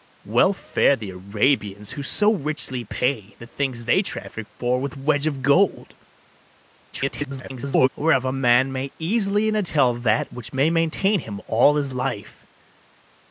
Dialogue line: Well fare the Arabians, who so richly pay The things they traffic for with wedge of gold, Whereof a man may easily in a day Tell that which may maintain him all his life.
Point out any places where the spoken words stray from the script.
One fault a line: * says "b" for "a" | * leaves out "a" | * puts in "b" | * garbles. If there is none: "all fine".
* garbles
* leaves out "day"